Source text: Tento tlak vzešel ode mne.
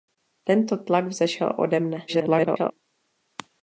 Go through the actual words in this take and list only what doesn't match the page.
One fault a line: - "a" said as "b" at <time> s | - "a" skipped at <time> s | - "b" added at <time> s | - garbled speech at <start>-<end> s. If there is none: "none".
- garbled speech at 2.1-2.7 s